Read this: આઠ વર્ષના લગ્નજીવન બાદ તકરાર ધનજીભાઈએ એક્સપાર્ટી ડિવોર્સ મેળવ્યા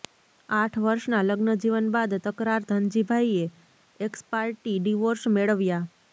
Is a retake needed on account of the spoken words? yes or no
no